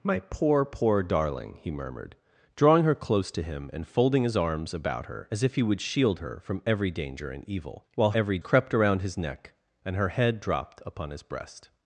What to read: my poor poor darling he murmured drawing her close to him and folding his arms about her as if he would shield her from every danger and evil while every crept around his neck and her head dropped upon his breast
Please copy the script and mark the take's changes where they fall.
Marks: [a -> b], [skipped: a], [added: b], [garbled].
my poor poor darling he murmured drawing her close to him and folding his arms about her as if he would shield her from every danger and evil while every crept around his neck and her head dropped upon his breast